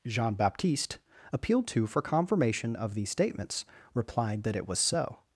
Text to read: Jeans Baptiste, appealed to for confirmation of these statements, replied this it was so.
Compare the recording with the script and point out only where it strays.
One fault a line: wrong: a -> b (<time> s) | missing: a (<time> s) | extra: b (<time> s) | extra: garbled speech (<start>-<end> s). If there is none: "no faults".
wrong: Jeans -> Jean (0.1 s)
wrong: this -> that (4.4 s)